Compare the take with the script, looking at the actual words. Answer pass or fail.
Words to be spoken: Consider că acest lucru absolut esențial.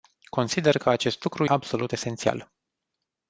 pass